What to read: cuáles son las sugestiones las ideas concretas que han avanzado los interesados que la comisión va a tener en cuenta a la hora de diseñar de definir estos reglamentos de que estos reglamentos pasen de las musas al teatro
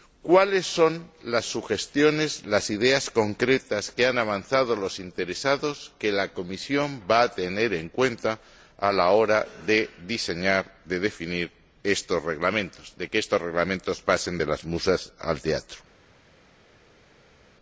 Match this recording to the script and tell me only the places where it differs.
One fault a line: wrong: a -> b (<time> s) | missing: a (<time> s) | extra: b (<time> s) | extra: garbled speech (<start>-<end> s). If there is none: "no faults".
no faults